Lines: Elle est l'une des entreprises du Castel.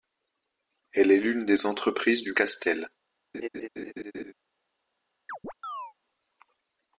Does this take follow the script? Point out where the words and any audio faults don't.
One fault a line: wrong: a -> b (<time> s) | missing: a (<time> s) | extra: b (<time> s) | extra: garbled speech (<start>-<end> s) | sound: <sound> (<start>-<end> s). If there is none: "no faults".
sound: laugh (3.3-4.3 s)
sound: chirp (5.3-5.9 s)